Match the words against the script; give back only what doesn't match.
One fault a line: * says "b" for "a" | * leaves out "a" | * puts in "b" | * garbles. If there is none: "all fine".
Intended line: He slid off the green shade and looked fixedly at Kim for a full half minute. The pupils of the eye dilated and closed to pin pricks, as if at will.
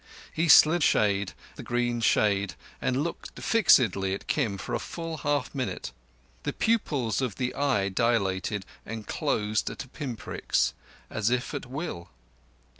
* says "shade" for "off"